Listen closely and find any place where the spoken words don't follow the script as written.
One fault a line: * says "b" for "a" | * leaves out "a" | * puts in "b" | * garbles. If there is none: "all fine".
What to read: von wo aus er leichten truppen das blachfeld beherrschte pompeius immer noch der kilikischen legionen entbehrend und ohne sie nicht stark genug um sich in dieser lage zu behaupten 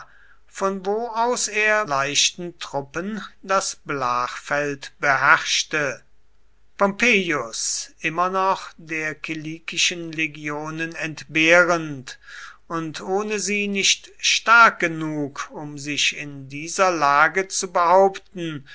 all fine